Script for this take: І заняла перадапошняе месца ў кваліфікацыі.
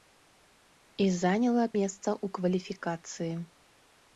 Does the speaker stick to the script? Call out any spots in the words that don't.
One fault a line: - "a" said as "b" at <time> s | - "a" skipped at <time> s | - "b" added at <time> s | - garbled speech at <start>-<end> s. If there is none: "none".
- "перадапошняе" skipped at 1.6 s